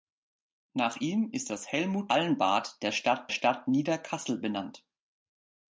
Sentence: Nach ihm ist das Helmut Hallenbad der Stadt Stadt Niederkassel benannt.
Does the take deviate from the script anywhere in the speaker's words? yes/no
no